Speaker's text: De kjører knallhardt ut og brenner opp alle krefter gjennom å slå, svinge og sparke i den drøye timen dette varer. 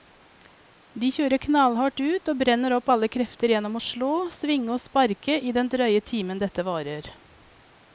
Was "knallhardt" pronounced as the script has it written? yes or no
yes